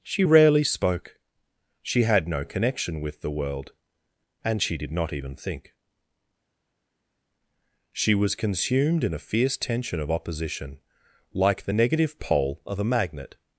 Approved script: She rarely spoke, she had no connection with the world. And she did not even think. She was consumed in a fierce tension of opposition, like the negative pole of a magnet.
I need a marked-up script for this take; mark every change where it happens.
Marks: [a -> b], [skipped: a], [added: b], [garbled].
She rarely spoke, she had no connection with the world. And she did not even think. She was consumed in a fierce tension of opposition, like the negative pole of a magnet.